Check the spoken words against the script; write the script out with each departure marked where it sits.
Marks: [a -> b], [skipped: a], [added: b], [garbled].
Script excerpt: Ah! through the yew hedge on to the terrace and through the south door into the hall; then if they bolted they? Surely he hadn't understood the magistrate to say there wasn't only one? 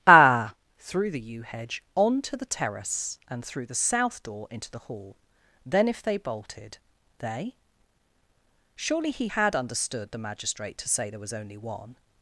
Ah! through the yew hedge on to the terrace and through the south door into the hall; then if they bolted they? Surely he [hadn't -> had] understood the magistrate to say there [wasn't -> was] only one?